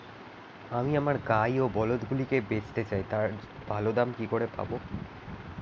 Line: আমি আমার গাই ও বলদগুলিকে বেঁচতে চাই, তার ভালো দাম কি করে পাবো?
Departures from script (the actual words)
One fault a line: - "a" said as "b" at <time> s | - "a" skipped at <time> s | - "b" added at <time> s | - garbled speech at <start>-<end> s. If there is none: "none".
none